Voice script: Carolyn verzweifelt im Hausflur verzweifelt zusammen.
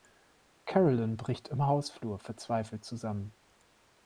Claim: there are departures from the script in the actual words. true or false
true